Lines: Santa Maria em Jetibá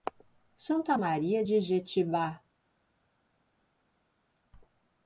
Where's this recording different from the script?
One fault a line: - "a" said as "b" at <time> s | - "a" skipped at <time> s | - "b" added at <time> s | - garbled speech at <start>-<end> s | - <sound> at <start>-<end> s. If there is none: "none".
- "em" said as "de" at 1.4 s